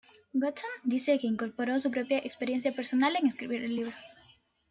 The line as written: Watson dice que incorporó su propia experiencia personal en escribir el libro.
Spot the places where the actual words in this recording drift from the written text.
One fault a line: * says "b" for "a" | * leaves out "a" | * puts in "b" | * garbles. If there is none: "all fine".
all fine